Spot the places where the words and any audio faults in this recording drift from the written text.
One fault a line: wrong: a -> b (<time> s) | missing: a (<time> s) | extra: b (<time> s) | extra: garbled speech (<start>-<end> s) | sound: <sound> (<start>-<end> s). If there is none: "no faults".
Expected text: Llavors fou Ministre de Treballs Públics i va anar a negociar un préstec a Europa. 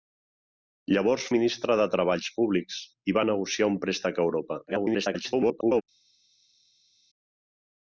missing: fou (1.3 s)
missing: anar (3.3 s)
extra: garbled speech (4.7-5.8 s)